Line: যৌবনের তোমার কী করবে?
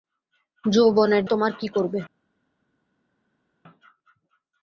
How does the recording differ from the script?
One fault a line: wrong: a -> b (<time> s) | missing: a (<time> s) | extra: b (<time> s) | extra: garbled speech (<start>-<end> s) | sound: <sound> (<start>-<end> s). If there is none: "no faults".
no faults